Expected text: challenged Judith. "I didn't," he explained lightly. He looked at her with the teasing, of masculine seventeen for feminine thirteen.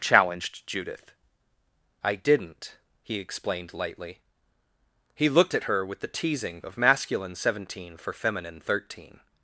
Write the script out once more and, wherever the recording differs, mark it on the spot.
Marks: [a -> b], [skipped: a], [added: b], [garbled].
challenged Judith. "I didn't," he explained lightly. He looked at her with the teasing, of masculine seventeen for feminine thirteen.